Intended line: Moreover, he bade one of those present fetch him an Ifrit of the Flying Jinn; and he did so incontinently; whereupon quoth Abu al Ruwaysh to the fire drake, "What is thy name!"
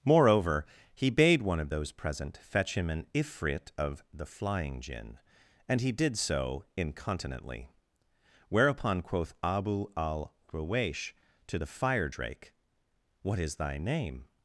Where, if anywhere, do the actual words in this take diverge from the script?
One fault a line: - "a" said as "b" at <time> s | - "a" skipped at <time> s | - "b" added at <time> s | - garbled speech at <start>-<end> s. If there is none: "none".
none